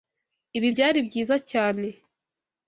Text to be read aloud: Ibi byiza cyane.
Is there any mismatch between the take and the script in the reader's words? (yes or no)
yes